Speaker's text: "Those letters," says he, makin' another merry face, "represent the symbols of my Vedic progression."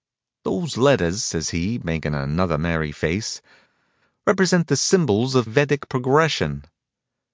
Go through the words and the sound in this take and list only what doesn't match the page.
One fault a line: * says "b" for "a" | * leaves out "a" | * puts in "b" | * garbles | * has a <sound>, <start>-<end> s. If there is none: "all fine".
* leaves out "my"